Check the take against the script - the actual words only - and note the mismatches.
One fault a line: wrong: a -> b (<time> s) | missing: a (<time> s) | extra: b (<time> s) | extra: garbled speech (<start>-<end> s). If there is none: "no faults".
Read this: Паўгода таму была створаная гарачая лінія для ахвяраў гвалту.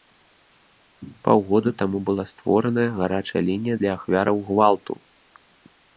no faults